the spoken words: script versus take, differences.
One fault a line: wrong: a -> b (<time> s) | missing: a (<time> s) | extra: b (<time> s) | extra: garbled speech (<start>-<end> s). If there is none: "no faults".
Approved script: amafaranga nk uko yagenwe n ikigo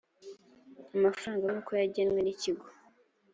no faults